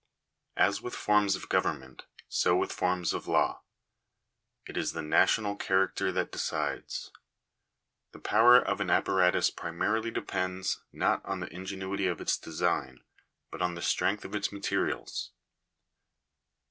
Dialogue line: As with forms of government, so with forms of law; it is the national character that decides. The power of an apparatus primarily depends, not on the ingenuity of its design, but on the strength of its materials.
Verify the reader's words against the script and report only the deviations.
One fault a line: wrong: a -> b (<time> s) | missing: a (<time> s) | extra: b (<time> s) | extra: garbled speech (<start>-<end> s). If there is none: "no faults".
no faults